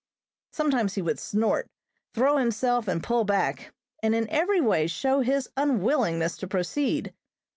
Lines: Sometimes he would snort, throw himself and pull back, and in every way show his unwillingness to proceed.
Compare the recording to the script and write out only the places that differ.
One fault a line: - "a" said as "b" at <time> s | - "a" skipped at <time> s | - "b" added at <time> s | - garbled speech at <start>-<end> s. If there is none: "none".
none